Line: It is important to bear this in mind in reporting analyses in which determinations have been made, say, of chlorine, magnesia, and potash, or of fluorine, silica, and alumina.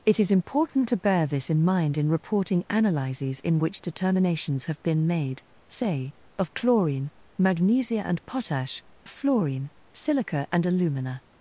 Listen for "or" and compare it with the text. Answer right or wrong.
wrong